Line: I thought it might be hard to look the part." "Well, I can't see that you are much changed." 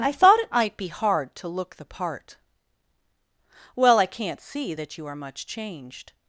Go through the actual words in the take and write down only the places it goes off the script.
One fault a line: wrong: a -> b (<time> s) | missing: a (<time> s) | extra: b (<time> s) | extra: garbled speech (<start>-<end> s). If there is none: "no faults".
no faults